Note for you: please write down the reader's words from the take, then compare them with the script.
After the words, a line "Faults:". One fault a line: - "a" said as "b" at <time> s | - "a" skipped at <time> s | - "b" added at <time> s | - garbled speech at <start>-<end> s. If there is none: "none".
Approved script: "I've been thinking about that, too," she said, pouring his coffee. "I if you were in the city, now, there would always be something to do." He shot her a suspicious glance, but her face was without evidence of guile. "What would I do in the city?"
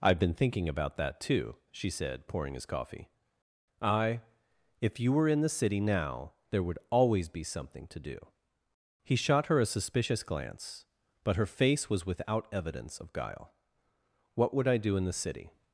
"I've been thinking about that, too," she said, pouring his coffee. "I if you were in the city, now, there would always be something to do." He shot her a suspicious glance, but her face was without evidence of guile. "What would I do in the city?"
Faults:
none